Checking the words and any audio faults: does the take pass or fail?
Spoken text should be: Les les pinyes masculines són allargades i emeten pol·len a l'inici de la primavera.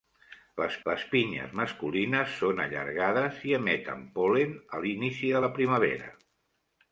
pass